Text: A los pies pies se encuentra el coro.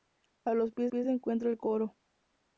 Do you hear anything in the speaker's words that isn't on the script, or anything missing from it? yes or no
no